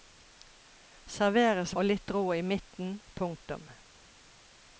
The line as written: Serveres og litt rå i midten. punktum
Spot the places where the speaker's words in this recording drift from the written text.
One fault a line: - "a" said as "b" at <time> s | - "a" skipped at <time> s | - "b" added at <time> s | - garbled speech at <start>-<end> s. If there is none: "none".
none